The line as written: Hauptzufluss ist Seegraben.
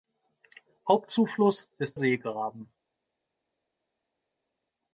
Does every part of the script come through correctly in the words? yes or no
yes